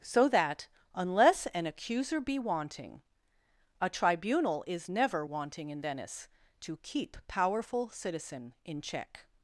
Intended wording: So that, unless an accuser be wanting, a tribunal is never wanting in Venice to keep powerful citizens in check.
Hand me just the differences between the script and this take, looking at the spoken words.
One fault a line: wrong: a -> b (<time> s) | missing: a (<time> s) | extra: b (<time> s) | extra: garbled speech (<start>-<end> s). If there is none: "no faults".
wrong: citizens -> citizen (7.9 s)